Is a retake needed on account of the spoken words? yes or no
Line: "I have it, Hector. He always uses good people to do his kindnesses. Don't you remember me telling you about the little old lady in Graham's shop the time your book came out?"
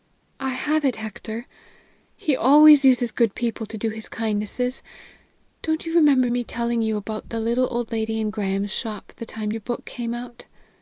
no